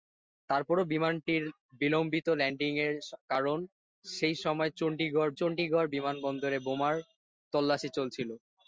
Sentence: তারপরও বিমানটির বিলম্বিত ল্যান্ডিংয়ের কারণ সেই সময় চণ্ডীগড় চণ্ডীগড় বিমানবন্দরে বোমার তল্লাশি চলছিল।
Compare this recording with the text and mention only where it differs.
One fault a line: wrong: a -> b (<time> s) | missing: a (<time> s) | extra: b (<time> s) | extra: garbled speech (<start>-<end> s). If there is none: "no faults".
no faults